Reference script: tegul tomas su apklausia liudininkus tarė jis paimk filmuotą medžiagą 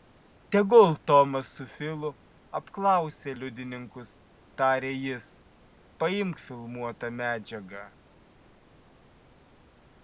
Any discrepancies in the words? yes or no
yes